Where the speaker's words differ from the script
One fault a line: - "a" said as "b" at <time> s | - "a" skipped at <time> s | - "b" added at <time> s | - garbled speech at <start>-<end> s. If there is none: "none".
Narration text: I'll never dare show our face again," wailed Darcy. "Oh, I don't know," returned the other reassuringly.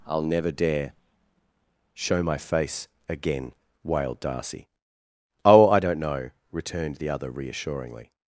- "our" said as "my" at 2.2 s